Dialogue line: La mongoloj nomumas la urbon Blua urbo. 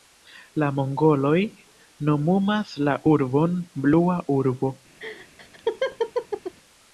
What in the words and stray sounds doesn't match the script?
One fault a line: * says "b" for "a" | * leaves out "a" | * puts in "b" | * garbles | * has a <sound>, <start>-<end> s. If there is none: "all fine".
* has a laugh, 5.0-6.5 s